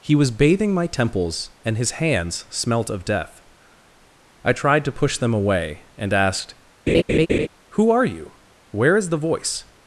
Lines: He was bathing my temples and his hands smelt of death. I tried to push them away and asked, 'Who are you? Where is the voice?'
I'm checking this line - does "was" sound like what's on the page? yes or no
yes